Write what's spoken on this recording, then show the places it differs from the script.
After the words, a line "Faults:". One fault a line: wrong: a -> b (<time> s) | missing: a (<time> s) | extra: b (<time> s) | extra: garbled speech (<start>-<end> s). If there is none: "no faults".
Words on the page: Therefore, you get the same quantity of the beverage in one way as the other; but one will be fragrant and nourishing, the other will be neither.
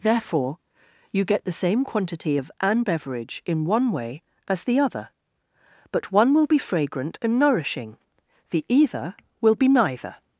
Therefore, you get the same quantity of an beverage in one way as the other; but one will be fragrant and nourishing, the either will be neither.
Faults:
wrong: the -> an (2.6 s)
wrong: other -> either (8.7 s)